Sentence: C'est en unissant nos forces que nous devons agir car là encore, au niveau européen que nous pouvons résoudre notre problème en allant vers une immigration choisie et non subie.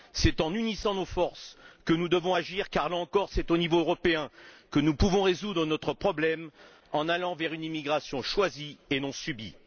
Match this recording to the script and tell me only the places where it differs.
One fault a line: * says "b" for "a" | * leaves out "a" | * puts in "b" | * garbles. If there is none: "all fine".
* puts in "c'est"